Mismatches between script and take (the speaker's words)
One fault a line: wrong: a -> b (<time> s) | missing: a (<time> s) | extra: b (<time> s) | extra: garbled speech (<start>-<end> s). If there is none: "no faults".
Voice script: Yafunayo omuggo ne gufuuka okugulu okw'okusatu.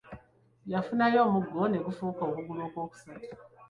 no faults